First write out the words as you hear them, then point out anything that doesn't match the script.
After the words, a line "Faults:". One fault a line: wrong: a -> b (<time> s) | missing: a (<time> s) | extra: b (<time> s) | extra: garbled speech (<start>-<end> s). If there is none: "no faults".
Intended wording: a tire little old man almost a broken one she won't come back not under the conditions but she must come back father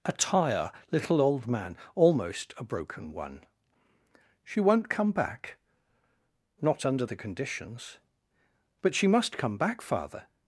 a tire little old man almost a broken one she won't come back not under the conditions but she must come back father
Faults:
no faults